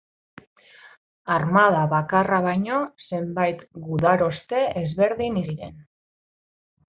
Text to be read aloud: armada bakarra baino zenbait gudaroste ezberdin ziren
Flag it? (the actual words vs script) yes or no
no